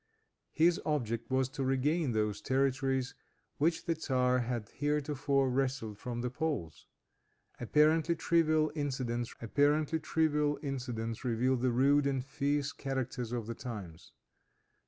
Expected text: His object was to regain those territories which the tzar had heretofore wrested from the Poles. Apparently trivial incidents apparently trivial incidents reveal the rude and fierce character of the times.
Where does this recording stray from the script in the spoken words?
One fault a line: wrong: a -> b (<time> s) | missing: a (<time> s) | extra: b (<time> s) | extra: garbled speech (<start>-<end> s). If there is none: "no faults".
no faults